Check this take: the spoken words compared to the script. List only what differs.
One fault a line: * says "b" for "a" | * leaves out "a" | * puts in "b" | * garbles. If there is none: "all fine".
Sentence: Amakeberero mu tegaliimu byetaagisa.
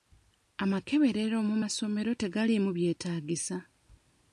* puts in "masomero"